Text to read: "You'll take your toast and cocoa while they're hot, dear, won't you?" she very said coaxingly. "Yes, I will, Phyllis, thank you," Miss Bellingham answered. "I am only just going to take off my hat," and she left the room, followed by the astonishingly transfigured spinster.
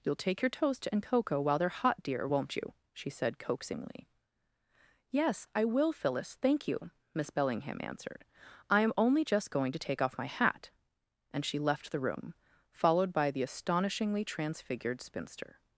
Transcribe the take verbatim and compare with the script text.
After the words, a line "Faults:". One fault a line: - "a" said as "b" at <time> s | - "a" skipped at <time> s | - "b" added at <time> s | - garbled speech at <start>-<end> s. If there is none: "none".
"You'll take your toast and cocoa while they're hot, dear, won't you?" she said coaxingly. "Yes, I will, Phyllis, thank you," Miss Bellingham answered. "I am only just going to take off my hat," and she left the room, followed by the astonishingly transfigured spinster.
Faults:
- "very" skipped at 3.1 s